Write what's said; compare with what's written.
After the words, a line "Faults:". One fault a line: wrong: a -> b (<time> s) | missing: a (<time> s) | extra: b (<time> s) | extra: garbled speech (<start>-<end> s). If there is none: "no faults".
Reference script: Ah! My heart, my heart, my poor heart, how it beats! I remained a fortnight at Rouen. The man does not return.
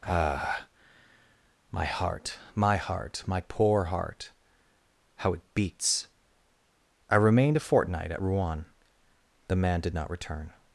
Ah! My heart, my heart, my poor heart, how it beats! I remained a fortnight at Rouen. The man did not return.
Faults:
wrong: does -> did (9.8 s)